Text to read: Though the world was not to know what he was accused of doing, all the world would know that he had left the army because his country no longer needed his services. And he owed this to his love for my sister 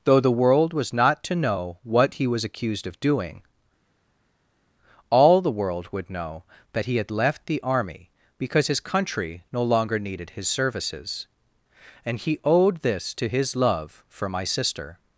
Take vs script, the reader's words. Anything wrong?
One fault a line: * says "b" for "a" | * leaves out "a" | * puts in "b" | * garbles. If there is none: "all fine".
all fine